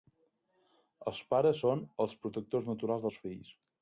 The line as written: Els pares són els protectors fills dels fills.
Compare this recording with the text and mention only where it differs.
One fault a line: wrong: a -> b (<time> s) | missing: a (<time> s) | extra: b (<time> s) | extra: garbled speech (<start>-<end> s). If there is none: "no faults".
wrong: fills -> naturals (2.7 s)